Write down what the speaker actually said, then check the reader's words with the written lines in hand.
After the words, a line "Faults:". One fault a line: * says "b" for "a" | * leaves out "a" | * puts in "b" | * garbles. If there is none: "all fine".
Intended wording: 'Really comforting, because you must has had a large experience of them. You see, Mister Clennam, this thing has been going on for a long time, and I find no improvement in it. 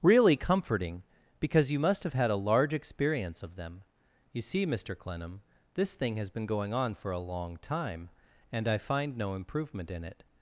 'Really comforting, because you must have had a large experience of them. You see, Mister Clennam, this thing has been going on for a long time, and I find no improvement in it.
Faults:
* says "have" for "has"